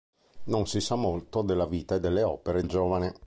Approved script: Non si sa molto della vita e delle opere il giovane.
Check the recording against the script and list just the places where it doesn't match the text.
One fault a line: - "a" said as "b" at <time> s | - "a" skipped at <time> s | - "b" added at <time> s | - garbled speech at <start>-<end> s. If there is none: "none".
none